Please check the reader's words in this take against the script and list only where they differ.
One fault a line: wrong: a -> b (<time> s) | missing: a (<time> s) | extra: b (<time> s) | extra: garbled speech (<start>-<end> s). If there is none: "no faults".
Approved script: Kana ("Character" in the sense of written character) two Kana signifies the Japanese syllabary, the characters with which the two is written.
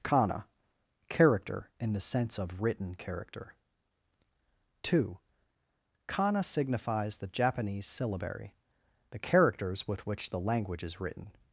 wrong: two -> language (10.4 s)